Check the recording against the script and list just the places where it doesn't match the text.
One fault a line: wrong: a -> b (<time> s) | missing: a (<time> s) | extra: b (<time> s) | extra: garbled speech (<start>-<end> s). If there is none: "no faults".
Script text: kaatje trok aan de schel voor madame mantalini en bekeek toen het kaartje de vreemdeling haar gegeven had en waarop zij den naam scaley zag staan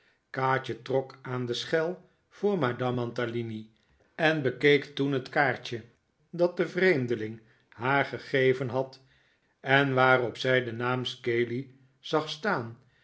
extra: dat (6.3 s)